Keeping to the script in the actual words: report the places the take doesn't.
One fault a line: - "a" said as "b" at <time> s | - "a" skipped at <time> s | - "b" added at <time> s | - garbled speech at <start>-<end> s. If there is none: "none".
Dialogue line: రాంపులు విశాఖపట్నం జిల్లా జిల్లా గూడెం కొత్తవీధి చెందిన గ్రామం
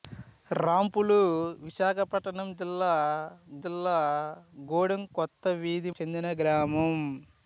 none